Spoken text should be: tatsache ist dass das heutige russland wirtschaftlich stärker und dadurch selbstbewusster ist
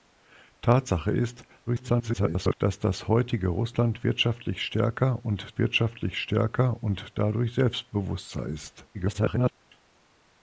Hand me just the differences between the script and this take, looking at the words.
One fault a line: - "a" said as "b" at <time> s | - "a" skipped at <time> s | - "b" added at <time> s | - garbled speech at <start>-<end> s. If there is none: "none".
- garbled speech at 1.7-2.6 s
- "wirtschaftlich stärker und" added at 5.6 s
- garbled speech at 8.9-9.5 s